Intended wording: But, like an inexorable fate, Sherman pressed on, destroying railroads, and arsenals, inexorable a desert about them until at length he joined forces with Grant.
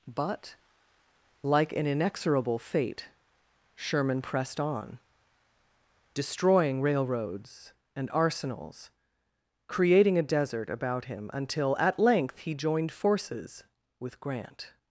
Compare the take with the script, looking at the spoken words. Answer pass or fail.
fail